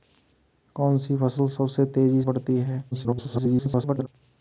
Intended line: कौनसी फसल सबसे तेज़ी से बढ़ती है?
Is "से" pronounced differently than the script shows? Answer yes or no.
yes